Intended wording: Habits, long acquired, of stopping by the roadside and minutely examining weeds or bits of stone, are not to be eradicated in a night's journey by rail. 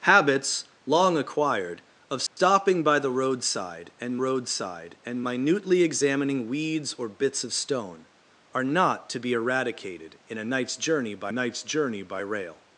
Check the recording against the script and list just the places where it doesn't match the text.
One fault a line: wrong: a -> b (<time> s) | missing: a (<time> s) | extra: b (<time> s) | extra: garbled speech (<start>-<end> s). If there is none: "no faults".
extra: roadside and (4.2 s)
extra: night's journey by (11.3 s)